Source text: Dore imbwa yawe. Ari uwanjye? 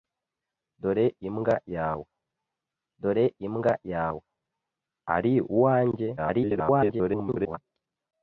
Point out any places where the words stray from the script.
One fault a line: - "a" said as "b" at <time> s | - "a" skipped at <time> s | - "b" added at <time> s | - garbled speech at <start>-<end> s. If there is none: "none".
- "dore imbwa yawe" added at 3.0 s
- garbled speech at 6.2-7.6 s